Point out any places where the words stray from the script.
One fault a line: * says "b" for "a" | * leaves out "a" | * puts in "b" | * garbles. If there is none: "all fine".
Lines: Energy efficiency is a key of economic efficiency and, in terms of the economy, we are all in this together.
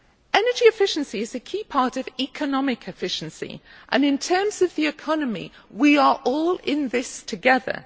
* puts in "part"